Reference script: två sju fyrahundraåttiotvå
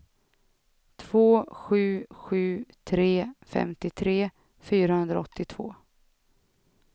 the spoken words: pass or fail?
fail